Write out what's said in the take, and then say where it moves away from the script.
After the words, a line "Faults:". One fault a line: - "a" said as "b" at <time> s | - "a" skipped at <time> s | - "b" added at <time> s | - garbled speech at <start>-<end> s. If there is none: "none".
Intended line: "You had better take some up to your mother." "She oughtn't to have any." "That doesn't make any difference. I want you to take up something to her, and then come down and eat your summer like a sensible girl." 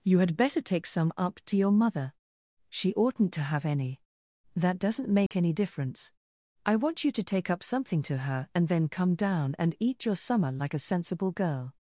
"You had better take some up to your mother." "She oughtn't to have any." "That doesn't make any difference. I want you to take up something to her, and then come down and eat your summer like a sensible girl."
Faults:
none